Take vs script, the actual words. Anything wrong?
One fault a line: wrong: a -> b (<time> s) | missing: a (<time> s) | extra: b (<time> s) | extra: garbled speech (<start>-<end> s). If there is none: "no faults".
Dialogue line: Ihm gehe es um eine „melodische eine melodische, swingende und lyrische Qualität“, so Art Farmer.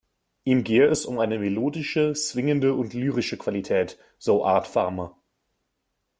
missing: eine melodische (2.1 s)